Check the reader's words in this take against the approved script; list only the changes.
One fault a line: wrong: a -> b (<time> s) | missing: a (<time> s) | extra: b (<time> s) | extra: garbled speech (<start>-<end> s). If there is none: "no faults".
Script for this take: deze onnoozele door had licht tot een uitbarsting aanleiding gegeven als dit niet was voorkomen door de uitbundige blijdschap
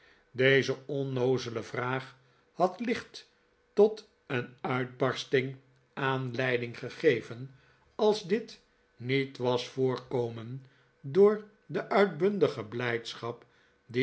wrong: door -> vraag (1.6 s)